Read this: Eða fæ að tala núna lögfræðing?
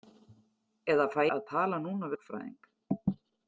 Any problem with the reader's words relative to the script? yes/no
no